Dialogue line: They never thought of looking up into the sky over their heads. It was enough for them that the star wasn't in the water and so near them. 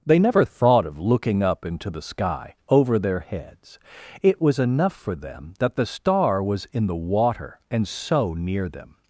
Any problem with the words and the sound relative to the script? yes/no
yes